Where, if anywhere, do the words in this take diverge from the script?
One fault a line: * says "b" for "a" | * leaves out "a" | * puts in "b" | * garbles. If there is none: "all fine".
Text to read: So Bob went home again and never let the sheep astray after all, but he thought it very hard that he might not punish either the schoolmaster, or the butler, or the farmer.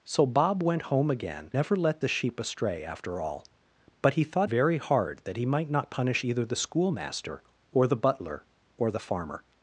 * leaves out "and"
* leaves out "it"